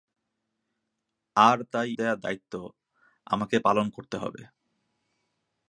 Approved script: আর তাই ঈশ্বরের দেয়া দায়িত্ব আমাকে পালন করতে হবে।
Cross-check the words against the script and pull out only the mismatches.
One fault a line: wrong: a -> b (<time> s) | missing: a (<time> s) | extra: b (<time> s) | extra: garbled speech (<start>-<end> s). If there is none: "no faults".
missing: ঈশ্বরের (1.9 s)